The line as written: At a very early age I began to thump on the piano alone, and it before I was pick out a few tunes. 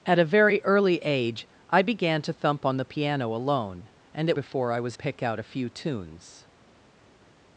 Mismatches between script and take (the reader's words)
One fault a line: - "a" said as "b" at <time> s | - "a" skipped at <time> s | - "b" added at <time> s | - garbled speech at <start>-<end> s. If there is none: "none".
none